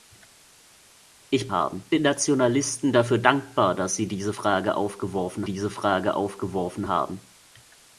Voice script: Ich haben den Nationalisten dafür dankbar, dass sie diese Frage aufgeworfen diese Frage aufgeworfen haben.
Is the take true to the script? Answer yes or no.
yes